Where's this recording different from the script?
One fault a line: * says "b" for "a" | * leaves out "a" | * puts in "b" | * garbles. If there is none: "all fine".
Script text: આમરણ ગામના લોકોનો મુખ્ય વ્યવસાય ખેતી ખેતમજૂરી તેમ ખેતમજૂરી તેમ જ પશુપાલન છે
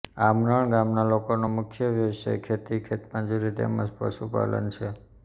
* leaves out "ખેતમજૂરી તેમ"